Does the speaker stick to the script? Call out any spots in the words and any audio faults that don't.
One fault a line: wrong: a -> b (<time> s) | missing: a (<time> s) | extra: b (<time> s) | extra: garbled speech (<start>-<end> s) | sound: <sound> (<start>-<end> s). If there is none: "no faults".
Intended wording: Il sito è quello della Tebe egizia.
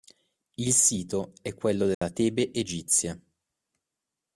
sound: dropout (1.9-2.0 s)